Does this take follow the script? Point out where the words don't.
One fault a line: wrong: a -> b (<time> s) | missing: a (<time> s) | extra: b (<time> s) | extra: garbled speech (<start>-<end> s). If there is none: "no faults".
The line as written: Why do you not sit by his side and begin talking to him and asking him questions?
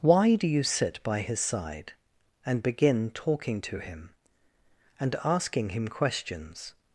missing: not (0.6 s)